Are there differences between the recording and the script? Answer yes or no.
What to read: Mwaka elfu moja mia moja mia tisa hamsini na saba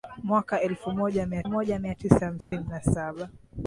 no